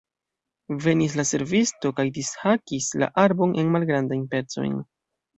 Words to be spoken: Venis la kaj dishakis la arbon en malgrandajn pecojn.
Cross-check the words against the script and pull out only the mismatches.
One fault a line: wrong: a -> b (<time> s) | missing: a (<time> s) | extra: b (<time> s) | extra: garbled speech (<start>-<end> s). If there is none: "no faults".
extra: servisto (1.3 s)